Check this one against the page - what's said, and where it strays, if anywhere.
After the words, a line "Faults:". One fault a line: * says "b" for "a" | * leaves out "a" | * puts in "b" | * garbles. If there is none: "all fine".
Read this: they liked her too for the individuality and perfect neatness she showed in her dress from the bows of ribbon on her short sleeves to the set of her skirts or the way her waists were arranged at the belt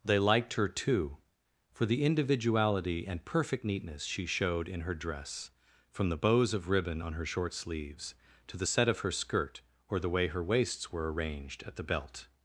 they liked her too for the individuality and perfect neatness she showed in her dress from the bows of ribbon on her short sleeves to the set of her skirt or the way her waists were arranged at the belt
Faults:
* says "skirt" for "skirts"